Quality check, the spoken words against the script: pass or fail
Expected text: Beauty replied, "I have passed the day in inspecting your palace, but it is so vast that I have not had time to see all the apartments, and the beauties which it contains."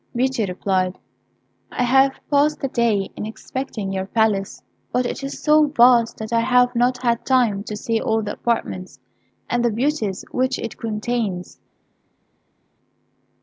pass